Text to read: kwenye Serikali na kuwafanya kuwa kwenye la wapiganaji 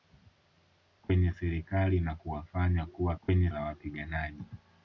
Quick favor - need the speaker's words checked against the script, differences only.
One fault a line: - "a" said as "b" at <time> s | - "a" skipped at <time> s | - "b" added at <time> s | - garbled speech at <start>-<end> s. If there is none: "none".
none